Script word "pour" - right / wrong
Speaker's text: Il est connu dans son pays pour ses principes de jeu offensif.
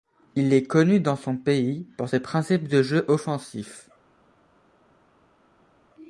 right